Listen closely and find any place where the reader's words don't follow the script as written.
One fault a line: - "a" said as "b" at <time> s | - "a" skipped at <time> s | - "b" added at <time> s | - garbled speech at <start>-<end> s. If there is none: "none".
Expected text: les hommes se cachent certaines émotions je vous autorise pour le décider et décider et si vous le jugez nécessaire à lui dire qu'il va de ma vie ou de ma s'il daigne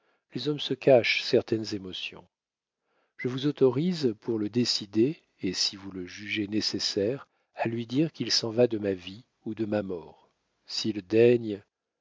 - "décider et" skipped at 5.5 s
- "s'en" added at 8.3 s
- "mort" added at 9.8 s